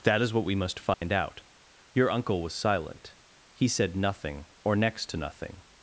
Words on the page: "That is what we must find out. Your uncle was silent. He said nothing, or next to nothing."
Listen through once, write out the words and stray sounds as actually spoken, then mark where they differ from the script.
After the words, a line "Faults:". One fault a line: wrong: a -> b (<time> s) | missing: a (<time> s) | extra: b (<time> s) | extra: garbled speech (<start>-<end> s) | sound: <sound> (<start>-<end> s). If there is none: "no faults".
"That is what we must find out. Your uncle was silent. He said nothing, or next to nothing."
Faults:
sound: dropout (0.9-1.0 s)